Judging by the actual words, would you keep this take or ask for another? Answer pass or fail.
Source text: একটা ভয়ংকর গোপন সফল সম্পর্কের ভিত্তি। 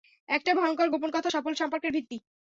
fail